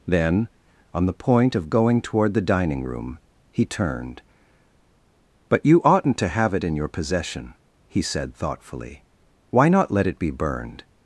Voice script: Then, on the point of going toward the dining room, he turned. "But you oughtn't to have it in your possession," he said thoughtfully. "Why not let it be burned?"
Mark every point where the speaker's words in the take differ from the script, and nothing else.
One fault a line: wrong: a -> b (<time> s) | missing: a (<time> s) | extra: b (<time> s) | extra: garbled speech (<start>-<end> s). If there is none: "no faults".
no faults